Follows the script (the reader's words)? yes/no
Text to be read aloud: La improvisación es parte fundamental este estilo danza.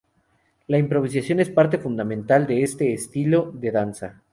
no